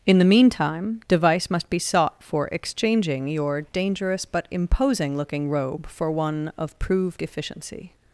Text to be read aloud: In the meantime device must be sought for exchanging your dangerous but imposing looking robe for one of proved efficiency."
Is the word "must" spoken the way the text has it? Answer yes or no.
yes